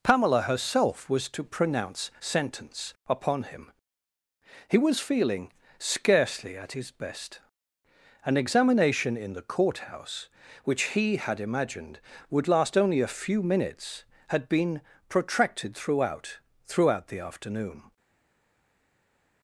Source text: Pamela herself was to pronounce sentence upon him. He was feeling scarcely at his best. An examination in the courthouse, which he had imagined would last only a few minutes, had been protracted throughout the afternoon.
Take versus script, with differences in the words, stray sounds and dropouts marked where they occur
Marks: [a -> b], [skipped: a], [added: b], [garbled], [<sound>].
Pamela herself was to pronounce sentence upon him. He was feeling scarcely at his best. An examination in the courthouse, which he had imagined would last only a few minutes, had been protracted throughout [added: throughout] the afternoon.